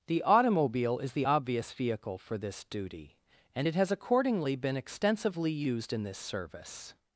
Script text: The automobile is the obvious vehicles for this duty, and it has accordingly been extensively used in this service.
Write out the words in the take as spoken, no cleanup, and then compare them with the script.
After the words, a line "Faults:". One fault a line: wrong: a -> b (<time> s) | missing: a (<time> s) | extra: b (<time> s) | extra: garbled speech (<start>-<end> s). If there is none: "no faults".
The automobile is the obvious vehicle for this duty, and it has accordingly been extensively used in this service.
Faults:
wrong: vehicles -> vehicle (1.7 s)